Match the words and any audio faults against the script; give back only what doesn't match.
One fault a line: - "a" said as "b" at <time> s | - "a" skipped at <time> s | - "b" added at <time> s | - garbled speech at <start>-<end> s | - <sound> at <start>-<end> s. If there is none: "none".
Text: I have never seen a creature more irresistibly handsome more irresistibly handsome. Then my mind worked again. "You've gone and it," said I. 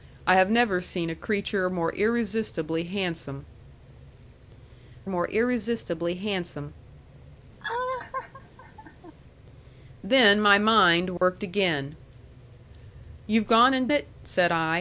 - laugh at 7.6-9.1 s
- dropout at 11.2-11.2 s